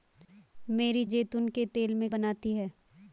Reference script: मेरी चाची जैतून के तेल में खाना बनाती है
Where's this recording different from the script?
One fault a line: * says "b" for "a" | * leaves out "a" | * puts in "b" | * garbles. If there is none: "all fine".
* leaves out "चाची"
* leaves out "खाना"